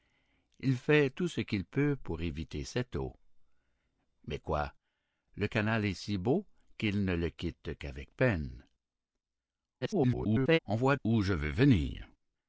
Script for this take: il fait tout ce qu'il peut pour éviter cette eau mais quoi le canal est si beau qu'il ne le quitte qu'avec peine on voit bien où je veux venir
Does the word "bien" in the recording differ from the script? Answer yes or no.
yes